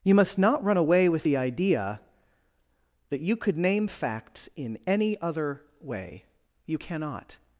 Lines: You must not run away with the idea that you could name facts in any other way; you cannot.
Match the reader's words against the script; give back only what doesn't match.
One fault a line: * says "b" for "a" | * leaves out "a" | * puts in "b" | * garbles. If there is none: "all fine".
all fine